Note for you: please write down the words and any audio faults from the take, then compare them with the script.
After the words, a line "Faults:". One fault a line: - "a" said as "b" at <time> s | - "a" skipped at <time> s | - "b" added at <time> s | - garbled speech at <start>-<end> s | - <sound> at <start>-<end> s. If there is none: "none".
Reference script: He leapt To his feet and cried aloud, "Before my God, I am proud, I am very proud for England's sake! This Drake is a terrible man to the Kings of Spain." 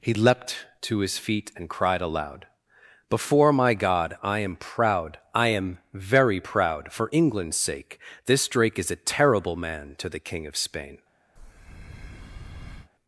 He leapt To his feet and cried aloud, "Before my God, I am proud, I am very proud for England's sake! This Drake is a terrible man to the King of Spain."
Faults:
- "Kings" said as "King" at 10.2 s
- breath at 11.4-12.9 s